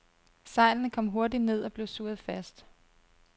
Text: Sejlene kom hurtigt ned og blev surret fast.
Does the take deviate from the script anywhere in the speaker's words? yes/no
no